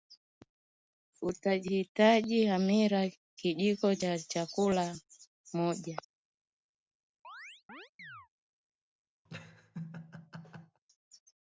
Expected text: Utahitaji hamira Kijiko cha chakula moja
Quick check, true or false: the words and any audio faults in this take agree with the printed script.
false